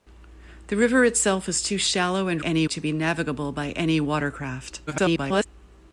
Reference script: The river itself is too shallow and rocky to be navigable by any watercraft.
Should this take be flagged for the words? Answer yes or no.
yes